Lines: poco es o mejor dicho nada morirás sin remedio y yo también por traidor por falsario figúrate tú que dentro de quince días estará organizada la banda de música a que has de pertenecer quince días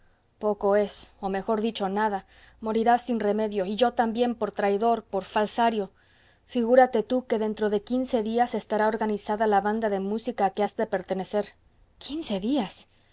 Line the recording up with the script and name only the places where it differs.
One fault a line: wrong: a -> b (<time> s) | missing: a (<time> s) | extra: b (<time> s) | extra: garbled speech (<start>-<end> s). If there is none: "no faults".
no faults